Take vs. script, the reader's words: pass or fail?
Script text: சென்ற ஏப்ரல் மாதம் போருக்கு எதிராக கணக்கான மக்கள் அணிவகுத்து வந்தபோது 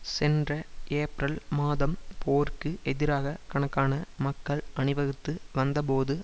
pass